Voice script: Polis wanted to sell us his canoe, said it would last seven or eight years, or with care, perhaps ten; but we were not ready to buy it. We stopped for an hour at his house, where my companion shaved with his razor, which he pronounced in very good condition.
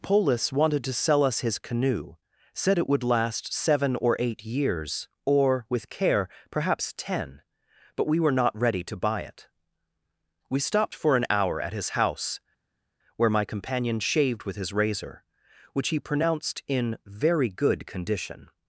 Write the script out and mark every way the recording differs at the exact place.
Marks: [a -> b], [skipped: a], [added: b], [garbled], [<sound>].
Polis wanted to sell us his canoe, said it would last seven or eight years, or with care, perhaps ten; but we were not ready to buy it. We stopped for an hour at his house, where my companion shaved with his razor, which he pronounced in very good condition.